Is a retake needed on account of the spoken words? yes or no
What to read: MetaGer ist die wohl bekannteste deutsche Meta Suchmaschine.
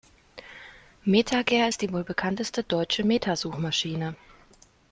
no